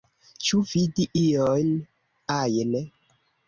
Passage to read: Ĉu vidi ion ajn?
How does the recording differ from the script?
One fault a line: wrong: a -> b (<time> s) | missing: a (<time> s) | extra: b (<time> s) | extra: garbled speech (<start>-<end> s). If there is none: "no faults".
no faults